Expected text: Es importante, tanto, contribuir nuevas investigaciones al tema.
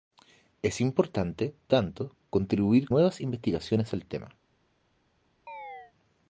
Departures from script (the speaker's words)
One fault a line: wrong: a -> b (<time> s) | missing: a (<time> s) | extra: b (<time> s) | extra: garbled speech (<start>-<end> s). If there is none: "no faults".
no faults